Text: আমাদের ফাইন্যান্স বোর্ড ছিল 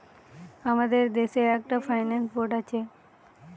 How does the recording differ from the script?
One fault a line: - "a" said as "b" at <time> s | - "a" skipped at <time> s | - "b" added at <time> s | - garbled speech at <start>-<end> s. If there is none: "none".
- "দেশে একটা" added at 1.1 s
- "ছিল" said as "আছে" at 2.6 s